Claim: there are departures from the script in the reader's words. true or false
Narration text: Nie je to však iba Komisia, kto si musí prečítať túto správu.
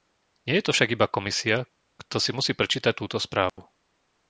false